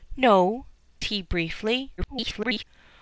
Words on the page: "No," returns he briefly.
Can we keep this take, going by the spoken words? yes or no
no